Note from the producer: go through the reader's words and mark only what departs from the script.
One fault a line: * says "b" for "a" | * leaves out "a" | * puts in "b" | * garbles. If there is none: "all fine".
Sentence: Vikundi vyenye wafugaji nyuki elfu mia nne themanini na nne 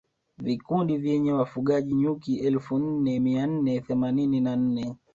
* puts in "nne"